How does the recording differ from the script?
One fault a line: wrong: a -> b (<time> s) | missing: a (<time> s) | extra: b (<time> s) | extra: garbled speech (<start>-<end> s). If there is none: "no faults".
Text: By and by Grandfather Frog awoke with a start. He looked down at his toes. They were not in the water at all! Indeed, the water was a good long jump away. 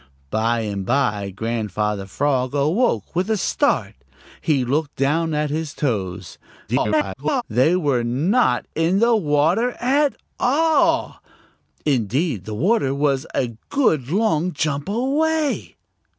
extra: garbled speech (6.7-7.4 s)